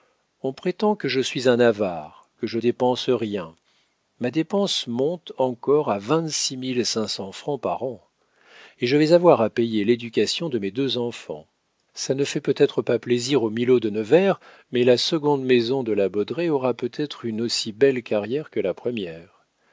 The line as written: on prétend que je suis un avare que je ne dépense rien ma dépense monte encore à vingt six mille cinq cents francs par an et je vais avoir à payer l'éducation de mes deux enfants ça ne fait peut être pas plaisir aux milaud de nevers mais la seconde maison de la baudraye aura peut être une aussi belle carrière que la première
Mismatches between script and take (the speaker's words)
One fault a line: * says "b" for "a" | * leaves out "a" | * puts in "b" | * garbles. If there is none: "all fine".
* leaves out "ne"